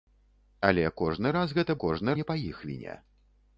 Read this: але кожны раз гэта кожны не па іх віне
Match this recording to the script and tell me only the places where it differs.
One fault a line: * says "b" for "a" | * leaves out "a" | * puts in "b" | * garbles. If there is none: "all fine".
all fine